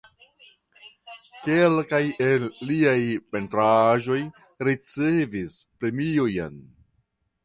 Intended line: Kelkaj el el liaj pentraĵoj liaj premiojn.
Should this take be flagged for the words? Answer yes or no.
yes